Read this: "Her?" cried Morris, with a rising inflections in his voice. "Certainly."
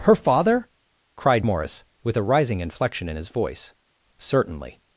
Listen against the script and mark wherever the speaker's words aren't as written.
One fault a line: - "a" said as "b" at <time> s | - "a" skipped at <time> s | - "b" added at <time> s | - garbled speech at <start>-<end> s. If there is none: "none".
- "father" added at 0.1 s
- "inflections" said as "inflection" at 2.6 s